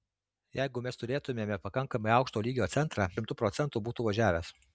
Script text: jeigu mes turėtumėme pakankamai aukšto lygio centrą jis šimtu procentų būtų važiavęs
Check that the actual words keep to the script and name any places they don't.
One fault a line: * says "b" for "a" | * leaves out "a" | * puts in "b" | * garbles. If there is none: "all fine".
* leaves out "jis"